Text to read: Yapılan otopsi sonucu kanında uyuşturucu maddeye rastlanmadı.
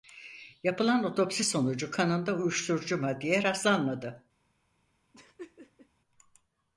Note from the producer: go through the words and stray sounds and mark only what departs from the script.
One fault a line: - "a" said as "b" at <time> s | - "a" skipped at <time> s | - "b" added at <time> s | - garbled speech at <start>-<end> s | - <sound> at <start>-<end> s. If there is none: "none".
- laugh at 5.1-5.9 s